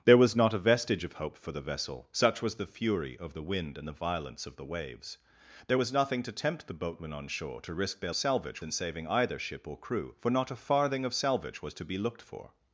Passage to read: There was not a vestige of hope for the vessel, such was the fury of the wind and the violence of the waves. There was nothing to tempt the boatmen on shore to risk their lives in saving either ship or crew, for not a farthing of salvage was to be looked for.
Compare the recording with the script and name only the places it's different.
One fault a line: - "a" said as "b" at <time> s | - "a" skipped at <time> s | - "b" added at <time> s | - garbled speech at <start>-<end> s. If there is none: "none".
- "lives" said as "salvage" at 8.1 s